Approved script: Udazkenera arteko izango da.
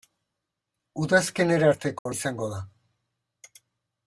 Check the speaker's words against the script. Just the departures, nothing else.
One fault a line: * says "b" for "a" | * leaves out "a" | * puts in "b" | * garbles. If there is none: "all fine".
all fine